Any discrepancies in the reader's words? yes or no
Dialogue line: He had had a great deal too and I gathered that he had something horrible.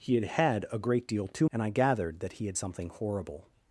no